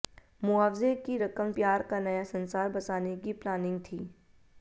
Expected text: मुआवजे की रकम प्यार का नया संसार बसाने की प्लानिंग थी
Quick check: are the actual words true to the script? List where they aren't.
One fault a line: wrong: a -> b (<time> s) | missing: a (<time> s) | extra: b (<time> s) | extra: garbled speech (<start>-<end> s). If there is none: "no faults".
no faults